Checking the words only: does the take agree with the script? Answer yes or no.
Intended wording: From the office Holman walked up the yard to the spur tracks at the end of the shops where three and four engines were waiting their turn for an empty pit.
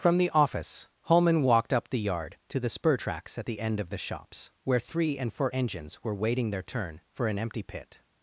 yes